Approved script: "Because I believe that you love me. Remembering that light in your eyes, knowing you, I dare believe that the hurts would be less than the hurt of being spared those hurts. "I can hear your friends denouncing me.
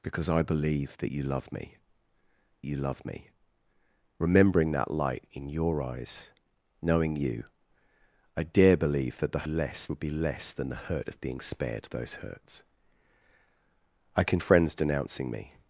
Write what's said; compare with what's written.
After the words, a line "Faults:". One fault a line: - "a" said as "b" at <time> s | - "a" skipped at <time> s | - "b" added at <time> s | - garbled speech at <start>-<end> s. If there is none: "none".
"Because I believe that you love me you love me. Remembering that light in your eyes, knowing you, I dare believe that the less would be less than the hurt of being spared those hurts. "I can friends denouncing me.
Faults:
- "you love me" added at 2.6 s
- "hurts" said as "less" at 9.4 s
- "hear your" skipped at 14.4 s